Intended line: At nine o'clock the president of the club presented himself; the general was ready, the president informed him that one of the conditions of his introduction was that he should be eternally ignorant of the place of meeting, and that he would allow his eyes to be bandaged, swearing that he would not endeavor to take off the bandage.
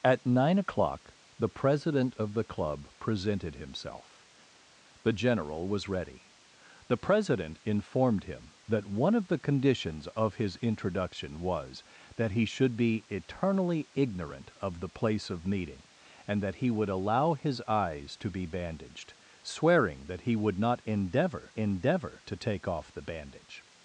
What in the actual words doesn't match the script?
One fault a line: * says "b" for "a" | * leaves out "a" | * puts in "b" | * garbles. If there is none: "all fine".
* puts in "endeavor"